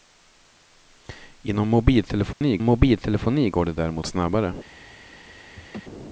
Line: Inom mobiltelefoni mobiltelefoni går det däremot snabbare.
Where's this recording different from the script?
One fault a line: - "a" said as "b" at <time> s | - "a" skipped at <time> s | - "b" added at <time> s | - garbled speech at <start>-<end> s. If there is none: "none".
none